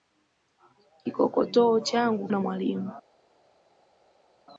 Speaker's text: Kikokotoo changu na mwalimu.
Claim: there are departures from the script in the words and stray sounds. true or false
false